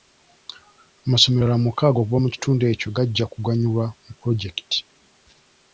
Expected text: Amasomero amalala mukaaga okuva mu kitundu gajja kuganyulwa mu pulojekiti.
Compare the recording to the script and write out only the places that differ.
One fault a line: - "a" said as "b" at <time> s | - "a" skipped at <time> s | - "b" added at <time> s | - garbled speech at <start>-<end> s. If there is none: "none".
- "ekyo" added at 2.7 s